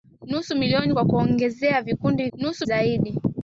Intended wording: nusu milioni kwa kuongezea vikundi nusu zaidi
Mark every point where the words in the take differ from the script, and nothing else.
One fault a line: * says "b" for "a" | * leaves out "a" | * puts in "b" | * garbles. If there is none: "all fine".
all fine